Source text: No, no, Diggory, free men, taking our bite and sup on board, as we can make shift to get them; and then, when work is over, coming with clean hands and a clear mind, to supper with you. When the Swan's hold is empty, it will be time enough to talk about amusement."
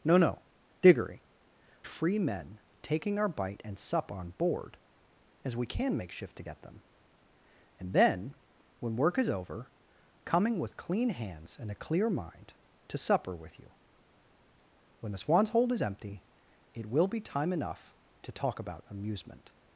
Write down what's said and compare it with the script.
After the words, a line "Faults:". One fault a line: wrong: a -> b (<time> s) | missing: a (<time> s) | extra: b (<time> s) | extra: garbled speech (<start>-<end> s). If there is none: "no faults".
No, no, Diggory, free men, taking our bite and sup on board, as we can make shift to get them; and then, when work is over, coming with clean hands and a clear mind, to supper with you. When the Swan's hold is empty, it will be time enough to talk about amusement."
Faults:
no faults